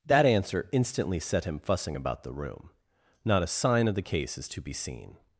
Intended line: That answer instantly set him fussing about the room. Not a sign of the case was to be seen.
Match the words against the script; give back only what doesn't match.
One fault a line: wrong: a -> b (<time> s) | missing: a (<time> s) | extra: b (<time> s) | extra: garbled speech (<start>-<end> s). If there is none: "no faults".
wrong: was -> is (4.4 s)